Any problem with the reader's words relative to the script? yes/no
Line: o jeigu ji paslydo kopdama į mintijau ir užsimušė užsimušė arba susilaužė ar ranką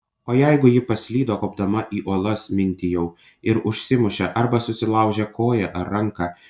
yes